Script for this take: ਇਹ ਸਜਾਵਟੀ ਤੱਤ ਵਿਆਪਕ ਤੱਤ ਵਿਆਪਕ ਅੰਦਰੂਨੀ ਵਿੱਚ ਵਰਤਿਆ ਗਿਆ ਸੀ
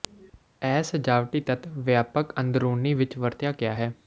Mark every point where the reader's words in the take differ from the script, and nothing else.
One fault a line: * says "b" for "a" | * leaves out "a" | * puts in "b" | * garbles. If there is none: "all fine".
* leaves out "ਤੱਤ ਵਿਆਪਕ"
* says "ਹੈ" for "ਸੀ"